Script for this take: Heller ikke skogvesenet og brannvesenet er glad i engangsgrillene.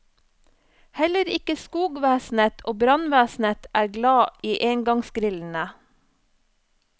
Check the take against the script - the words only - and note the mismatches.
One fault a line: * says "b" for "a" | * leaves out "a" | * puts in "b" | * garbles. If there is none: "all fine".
all fine